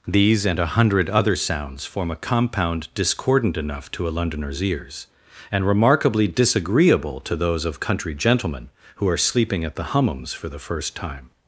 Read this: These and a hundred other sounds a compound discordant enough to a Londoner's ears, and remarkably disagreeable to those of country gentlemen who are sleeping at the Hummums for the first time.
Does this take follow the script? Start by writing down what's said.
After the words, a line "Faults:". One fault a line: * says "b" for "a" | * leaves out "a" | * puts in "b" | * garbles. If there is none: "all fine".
These and a hundred other sounds form a compound discordant enough to a Londoner's ears, and remarkably disagreeable to those of country gentlemen who are sleeping at the Hummums for the first time.
Faults:
* puts in "form"